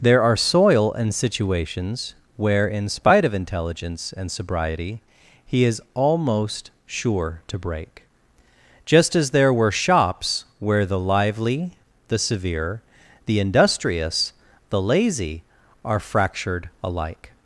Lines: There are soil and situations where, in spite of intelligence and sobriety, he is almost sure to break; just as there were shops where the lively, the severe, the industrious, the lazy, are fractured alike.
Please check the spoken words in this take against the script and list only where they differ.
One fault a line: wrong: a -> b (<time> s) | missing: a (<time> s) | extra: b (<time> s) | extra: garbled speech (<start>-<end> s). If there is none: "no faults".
no faults